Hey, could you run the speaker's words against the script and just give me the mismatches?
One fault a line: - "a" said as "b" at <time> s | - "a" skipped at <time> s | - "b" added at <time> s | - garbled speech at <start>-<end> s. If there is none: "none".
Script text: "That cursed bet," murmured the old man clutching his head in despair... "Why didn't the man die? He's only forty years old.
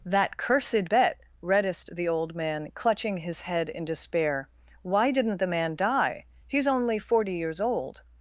- "murmured" said as "reddest" at 1.4 s